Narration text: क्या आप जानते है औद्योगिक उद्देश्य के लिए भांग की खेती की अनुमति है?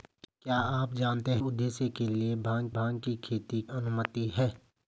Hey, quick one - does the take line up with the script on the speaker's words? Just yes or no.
no